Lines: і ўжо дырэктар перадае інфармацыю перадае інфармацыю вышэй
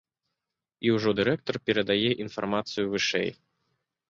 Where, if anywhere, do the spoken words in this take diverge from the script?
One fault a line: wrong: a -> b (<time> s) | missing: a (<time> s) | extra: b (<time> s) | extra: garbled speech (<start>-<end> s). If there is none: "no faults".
missing: перадае інфармацыю (2.8 s)